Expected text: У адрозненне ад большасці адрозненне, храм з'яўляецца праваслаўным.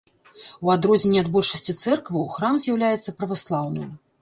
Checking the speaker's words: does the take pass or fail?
fail